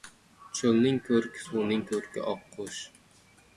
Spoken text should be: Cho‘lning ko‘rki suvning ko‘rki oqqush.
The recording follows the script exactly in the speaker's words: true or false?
true